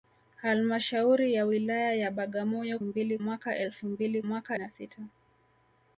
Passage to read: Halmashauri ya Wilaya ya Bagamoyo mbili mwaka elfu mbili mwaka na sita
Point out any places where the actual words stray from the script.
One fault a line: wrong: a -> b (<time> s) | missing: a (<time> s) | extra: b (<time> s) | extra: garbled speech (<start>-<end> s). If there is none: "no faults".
no faults